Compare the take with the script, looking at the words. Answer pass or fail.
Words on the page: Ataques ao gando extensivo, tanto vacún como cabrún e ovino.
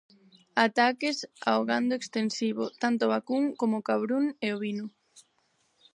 pass